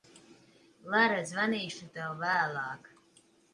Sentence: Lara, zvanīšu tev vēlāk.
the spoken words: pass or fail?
pass